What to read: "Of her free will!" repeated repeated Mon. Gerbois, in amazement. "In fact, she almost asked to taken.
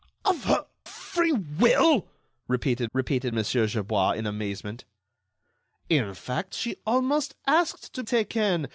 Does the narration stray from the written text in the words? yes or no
no